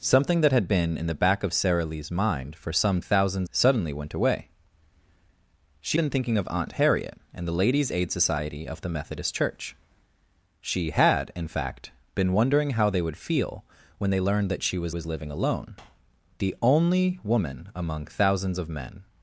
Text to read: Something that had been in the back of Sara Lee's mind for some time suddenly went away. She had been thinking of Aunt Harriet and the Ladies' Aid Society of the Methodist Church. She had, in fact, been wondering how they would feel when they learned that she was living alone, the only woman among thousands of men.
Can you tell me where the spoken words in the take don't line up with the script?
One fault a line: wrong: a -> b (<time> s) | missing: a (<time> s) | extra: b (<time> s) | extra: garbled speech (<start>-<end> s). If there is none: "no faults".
wrong: time -> thousands (3.0 s)
missing: had (6.0 s)
extra: was (14.9 s)